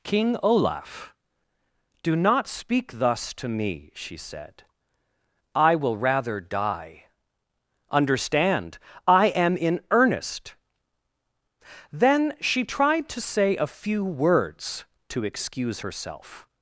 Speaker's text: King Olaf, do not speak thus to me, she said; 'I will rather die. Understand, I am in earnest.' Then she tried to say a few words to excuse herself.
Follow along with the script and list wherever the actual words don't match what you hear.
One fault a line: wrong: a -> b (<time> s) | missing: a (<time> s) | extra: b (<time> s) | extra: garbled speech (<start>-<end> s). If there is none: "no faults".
no faults